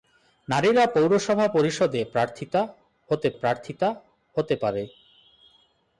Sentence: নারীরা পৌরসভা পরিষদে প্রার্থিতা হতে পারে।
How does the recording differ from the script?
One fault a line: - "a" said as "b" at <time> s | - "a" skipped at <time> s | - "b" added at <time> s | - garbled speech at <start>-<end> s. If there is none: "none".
- "প্রার্থিতা হতে" added at 3.3 s